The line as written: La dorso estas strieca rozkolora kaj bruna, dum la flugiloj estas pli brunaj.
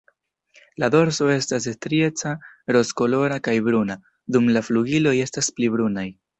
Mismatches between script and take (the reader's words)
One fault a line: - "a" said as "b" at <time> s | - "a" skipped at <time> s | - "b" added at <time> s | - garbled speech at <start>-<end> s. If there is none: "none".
none